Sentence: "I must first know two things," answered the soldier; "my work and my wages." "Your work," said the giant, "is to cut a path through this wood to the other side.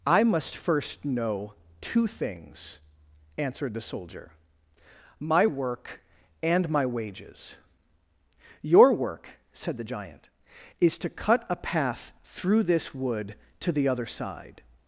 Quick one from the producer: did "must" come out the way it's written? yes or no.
yes